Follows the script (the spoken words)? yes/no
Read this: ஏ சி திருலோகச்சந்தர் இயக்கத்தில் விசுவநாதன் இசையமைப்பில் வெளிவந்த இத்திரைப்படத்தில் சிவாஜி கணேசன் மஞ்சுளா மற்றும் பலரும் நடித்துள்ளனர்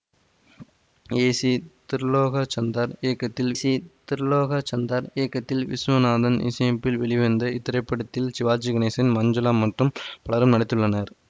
no